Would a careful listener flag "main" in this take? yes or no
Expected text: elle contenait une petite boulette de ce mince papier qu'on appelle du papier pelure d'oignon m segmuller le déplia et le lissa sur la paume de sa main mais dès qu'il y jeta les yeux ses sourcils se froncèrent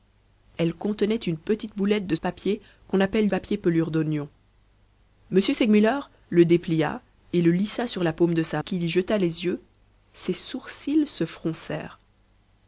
yes